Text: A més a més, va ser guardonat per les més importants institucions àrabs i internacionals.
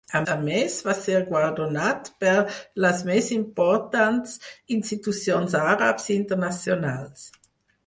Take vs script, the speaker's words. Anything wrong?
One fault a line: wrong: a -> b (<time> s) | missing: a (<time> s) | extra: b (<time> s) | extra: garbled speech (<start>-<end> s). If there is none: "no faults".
missing: més (0.2 s)